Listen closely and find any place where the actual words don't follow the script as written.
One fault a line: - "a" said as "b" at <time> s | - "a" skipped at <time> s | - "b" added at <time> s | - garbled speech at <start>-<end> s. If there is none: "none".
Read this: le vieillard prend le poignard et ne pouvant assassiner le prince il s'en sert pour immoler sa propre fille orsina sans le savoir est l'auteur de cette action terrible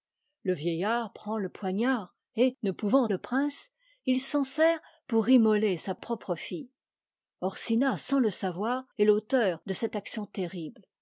- "assassiner" skipped at 3.0 s